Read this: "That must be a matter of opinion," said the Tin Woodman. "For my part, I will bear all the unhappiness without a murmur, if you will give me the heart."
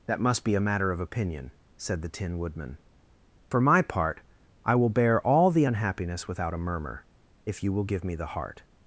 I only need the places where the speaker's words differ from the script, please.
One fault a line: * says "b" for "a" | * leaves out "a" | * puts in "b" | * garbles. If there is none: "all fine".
all fine